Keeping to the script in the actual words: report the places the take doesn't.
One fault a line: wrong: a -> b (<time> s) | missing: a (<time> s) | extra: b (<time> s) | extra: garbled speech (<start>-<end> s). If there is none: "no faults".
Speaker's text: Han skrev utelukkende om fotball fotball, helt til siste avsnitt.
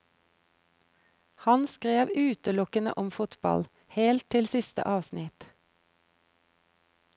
missing: fotball (3.7 s)